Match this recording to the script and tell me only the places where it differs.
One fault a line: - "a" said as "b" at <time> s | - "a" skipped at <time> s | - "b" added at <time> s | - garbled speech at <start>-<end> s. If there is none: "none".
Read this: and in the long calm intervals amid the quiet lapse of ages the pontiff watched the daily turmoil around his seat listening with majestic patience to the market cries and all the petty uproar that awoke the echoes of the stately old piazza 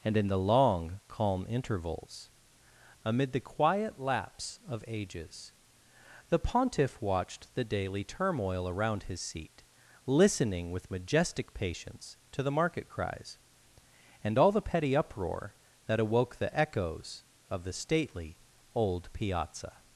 none